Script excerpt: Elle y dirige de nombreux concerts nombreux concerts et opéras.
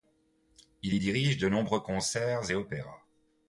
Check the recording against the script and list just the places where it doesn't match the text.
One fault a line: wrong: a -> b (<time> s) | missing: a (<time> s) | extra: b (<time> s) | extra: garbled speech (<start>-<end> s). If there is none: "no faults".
wrong: Elle -> Il (0.8 s)
missing: nombreux concerts (2.5 s)